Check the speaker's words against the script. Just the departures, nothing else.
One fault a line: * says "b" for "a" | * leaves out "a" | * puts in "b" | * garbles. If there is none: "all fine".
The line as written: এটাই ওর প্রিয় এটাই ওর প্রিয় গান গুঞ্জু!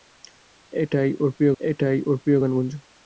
all fine